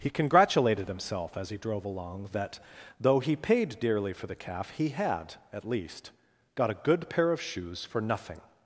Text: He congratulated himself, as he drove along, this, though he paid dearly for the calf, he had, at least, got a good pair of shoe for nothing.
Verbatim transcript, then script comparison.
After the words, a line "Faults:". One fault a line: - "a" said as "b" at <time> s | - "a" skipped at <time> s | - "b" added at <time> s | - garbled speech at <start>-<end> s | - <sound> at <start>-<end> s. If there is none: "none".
He congratulated himself, as he drove along, that, though he paid dearly for the calf, he had, at least, got a good pair of shoes for nothing.
Faults:
- "this" said as "that" at 2.3 s
- "shoe" said as "shoes" at 7.4 s